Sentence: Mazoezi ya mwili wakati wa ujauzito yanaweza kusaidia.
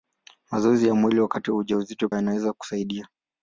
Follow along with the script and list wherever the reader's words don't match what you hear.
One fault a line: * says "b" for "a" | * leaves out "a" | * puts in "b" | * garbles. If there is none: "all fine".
all fine